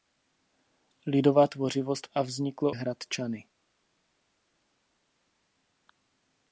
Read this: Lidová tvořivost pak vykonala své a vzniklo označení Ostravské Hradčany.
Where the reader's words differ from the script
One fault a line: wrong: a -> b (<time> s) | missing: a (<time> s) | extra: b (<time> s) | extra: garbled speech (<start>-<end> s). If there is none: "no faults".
missing: pak vykonala své (2.1 s)
missing: označení Ostravské (2.7 s)